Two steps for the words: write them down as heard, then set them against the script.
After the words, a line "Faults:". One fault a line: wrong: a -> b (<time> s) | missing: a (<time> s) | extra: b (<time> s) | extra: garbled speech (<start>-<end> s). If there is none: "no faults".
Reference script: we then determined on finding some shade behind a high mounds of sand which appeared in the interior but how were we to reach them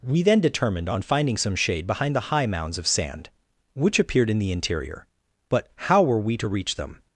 we then determined on finding some shade behind the high mounds of sand which appeared in the interior but how were we to reach them
Faults:
wrong: a -> the (2.1 s)